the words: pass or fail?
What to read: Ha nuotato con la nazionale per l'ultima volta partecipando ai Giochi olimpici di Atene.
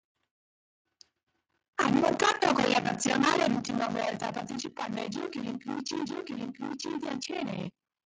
fail